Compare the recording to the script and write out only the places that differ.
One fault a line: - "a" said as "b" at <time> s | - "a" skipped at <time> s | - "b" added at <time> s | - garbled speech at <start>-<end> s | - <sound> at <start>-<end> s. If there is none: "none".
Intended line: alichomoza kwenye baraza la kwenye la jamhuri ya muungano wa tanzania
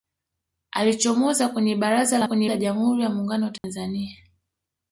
- dropout at 3.6-3.6 s